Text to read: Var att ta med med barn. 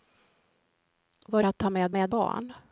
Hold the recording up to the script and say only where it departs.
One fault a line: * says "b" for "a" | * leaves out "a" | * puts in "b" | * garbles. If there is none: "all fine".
all fine